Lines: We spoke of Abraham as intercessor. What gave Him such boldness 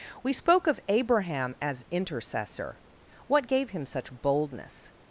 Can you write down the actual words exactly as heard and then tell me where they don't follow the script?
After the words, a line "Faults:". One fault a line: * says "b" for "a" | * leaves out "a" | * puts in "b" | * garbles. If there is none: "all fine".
We spoke of Abraham as intercessor. What gave Him such boldness
Faults:
all fine